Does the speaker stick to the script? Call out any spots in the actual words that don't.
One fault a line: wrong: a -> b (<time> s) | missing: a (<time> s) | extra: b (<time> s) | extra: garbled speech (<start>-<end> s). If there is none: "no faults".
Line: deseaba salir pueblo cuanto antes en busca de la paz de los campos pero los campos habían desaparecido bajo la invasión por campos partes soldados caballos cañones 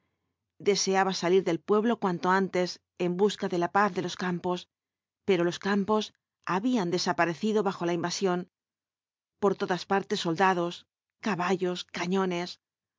extra: del (1.4 s)
wrong: campos -> todas (9.6 s)